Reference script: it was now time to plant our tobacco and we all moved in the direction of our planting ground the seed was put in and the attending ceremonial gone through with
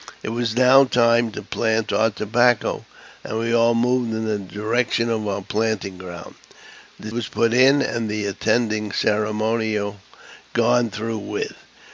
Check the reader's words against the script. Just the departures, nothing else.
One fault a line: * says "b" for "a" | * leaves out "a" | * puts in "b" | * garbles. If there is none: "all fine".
* leaves out "seed"